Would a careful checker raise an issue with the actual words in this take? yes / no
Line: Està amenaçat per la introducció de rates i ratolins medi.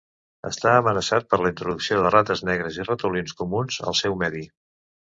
yes